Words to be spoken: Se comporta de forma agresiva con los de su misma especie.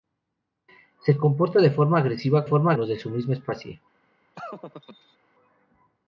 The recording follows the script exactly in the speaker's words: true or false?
false